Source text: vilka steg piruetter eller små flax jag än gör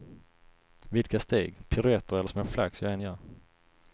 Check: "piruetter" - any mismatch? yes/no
no